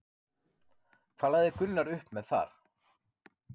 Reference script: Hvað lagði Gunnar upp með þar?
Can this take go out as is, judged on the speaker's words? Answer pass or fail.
pass